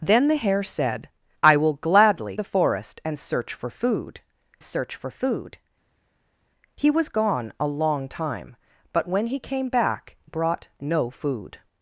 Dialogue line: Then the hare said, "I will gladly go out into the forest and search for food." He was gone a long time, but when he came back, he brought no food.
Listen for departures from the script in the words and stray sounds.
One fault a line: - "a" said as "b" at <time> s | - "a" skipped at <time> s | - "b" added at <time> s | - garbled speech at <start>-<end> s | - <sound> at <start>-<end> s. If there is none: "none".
- "go out into" skipped at 2.4 s
- "search for food" added at 4.6 s
- "he" skipped at 10.2 s